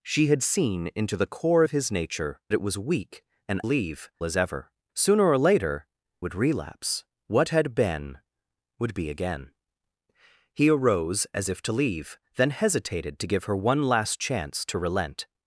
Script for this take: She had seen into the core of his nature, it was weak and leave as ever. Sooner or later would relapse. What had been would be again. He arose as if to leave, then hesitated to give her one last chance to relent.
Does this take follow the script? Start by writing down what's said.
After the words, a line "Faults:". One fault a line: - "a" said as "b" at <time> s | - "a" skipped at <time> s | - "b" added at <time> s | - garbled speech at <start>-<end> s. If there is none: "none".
She had seen into the core of his nature, it was weak and leave as ever. Sooner or later would relapse. What had been would be again. He arose as if to leave, then hesitated to give her one last chance to relent.
Faults:
none